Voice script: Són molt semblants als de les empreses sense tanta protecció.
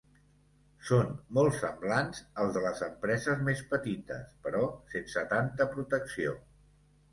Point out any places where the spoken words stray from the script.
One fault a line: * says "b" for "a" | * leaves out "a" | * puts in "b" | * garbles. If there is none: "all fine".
* puts in "més petites però"